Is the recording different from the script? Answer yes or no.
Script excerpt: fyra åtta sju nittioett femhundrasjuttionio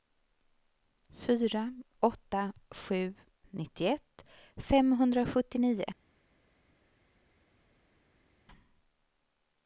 no